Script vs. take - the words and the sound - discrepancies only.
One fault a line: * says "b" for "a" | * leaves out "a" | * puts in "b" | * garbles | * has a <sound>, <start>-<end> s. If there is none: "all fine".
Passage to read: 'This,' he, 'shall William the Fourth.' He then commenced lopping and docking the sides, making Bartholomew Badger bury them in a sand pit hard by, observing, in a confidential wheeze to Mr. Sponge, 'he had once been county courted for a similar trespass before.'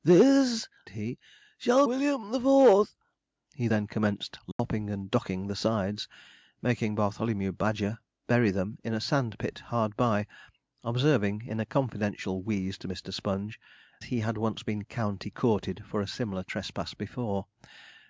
* has a dropout, 4.5-4.6 s